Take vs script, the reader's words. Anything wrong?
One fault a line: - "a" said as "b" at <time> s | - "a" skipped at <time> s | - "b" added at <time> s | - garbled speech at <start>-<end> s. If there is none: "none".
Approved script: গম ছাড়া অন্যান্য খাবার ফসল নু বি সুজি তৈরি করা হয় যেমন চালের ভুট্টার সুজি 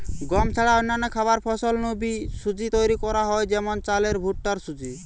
none